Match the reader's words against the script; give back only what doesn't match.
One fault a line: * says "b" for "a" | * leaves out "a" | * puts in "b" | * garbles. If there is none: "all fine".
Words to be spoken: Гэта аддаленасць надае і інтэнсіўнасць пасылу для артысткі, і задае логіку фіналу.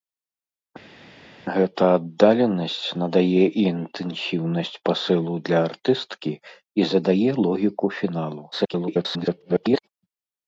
* garbles